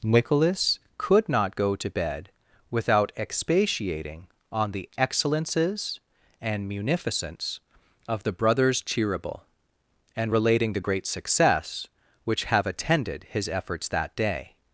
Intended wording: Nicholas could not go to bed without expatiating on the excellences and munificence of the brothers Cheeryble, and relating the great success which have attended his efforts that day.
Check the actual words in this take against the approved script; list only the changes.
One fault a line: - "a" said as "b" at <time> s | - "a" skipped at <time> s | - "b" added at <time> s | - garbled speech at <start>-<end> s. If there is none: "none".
none